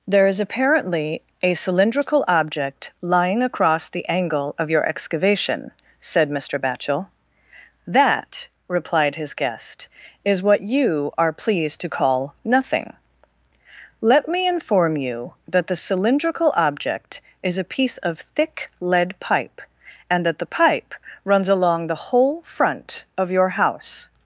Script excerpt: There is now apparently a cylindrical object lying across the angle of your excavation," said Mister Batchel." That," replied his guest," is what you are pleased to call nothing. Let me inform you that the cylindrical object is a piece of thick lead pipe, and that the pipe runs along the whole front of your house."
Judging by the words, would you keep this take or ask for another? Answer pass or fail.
fail